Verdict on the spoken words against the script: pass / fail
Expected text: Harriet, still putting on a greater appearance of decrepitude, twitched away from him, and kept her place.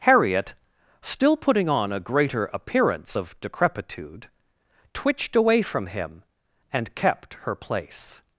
pass